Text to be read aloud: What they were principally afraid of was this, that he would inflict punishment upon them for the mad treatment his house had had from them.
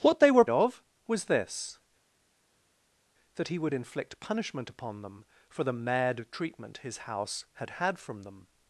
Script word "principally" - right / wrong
wrong